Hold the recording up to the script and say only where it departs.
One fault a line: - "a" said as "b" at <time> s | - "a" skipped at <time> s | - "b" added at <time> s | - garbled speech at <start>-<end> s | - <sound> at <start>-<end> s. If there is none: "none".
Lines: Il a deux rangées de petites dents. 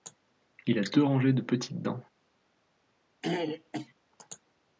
- throat clearing at 3.2-3.9 s